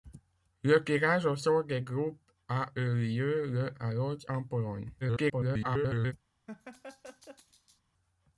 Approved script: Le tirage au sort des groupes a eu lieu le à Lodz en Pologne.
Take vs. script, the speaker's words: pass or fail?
fail